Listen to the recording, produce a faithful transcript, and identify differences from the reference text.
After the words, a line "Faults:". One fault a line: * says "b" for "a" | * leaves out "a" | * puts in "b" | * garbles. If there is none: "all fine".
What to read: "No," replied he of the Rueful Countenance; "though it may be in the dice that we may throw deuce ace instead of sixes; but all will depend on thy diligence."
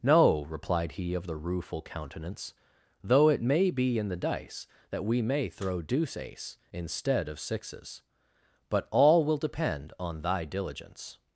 "No," replied he of the Rueful Countenance; "though it may be in the dice that we may throw deuce ace instead of sixes; but all will depend on thy diligence."
Faults:
all fine